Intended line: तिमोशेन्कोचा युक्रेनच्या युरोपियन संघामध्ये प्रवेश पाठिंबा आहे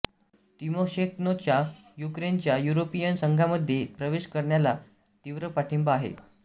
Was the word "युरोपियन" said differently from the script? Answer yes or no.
no